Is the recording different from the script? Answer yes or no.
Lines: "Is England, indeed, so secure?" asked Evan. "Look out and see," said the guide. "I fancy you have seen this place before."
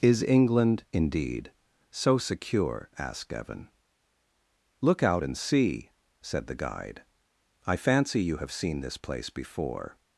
no